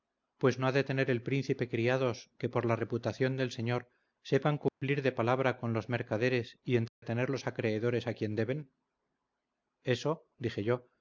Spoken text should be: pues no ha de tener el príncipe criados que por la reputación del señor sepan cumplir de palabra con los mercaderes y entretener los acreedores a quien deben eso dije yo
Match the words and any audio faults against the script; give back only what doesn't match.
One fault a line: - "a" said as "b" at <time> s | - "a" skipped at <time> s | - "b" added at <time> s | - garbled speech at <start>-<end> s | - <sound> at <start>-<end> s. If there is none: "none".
- dropout at 4.7-4.8 s
- dropout at 6.9-7.0 s